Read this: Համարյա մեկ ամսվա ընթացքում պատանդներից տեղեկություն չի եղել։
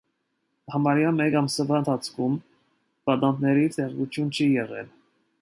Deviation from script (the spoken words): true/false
false